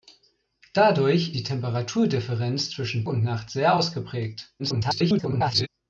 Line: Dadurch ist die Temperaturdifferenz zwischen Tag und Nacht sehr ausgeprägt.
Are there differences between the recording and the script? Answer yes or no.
yes